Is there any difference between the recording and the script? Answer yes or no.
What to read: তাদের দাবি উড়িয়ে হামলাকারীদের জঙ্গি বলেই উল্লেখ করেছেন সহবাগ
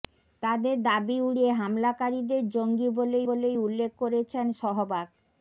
yes